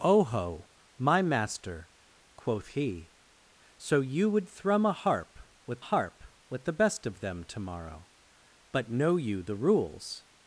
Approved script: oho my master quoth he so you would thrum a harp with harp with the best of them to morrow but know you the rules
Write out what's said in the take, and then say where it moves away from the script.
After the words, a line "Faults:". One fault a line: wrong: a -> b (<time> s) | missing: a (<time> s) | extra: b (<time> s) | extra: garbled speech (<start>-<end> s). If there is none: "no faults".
oho my master quoth he so you would thrum a harp with harp with the best of them to morrow but know you the rules
Faults:
no faults